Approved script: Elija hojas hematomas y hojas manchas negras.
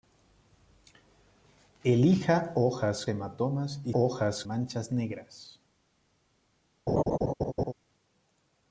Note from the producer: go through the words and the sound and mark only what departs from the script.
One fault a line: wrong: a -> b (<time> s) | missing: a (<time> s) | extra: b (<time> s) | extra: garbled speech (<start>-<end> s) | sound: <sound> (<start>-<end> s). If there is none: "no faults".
sound: laugh (6.9-7.7 s)